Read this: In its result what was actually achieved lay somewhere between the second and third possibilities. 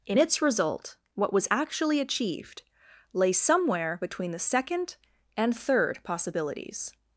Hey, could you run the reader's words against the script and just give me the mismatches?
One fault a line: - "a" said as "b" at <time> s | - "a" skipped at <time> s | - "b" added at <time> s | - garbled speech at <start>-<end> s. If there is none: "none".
none